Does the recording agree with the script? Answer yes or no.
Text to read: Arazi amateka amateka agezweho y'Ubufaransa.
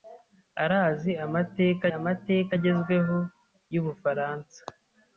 yes